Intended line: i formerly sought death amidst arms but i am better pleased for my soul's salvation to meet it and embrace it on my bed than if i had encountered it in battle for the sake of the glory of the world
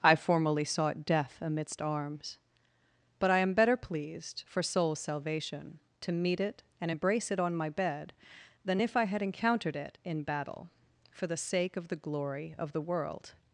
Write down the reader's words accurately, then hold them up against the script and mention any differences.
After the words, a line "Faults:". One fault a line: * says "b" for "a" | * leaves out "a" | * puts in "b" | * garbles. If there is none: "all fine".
i formerly sought death amidst arms but i am better pleased for soul's salvation to meet it and embrace it on my bed than if i had encountered it in battle for the sake of the glory of the world
Faults:
* leaves out "my"